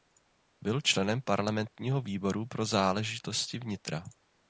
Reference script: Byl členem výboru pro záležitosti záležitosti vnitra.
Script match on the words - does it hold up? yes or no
no